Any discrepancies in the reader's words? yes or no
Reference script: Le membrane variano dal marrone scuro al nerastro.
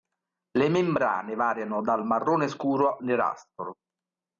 yes